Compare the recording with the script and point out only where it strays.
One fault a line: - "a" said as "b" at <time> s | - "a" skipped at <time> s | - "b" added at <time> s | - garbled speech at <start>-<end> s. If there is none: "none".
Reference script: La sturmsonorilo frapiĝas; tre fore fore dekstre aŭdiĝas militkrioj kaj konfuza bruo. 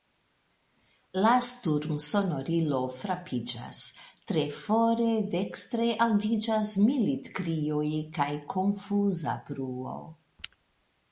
- "fore" skipped at 5.1 s